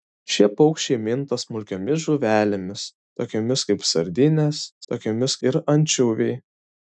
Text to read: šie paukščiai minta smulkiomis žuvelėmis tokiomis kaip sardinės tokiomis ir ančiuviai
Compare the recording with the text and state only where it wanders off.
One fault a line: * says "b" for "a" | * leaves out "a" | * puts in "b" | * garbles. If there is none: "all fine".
all fine